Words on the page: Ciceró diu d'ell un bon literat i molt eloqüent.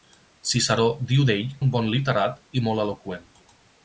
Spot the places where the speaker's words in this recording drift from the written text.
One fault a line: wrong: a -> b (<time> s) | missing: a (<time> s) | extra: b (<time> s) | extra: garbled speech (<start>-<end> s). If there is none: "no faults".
no faults